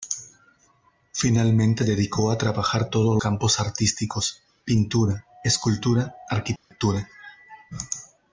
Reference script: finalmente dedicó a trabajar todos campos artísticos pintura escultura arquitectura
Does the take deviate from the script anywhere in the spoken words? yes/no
no